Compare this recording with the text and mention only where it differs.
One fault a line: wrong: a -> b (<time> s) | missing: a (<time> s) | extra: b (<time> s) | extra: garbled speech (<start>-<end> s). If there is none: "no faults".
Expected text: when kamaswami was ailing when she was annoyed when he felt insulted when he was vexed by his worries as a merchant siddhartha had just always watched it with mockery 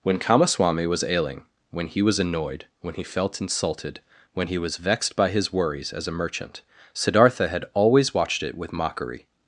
wrong: she -> he (1.9 s)
missing: just (7.6 s)